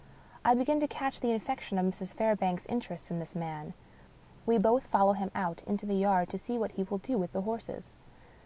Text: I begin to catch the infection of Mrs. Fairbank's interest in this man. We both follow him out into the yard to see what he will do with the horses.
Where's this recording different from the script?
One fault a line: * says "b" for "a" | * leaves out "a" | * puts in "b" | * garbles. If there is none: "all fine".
all fine